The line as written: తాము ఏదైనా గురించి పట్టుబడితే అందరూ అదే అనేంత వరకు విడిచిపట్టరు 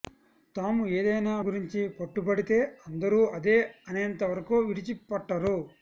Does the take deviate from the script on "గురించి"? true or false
false